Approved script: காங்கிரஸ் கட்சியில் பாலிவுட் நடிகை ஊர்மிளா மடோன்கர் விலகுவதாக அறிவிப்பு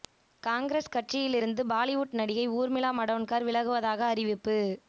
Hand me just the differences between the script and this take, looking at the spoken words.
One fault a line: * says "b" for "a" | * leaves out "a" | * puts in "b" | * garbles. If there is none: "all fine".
* puts in "இருந்து"